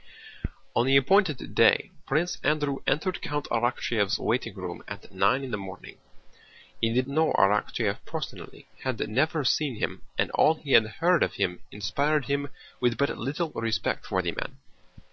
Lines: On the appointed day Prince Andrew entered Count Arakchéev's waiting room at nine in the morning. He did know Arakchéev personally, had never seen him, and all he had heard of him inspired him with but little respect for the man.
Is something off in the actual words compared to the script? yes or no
no